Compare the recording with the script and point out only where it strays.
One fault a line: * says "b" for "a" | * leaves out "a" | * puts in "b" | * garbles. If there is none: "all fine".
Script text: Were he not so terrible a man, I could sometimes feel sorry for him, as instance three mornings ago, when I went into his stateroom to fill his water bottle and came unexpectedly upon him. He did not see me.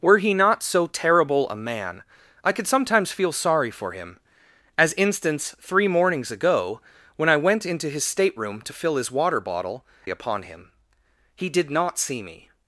* leaves out "and came unexpectedly"